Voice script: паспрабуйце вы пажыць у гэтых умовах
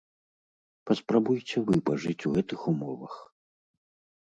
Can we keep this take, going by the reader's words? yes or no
yes